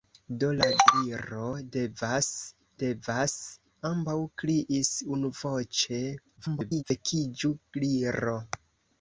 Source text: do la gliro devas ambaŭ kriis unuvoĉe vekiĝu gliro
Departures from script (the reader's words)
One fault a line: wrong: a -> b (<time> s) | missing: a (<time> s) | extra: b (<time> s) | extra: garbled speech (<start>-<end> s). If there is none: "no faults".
extra: devas (2.8 s)
extra: garbled speech (6.4-6.8 s)